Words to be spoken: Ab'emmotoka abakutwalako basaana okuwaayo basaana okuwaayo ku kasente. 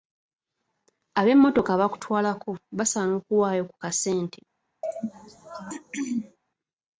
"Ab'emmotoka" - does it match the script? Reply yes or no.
yes